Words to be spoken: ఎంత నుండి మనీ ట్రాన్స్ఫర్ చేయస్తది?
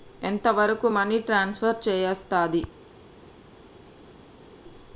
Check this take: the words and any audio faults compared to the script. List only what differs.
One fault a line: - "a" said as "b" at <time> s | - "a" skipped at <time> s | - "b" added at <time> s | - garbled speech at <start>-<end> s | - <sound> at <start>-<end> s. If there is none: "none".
- "నుండి" said as "వరకు" at 0.5 s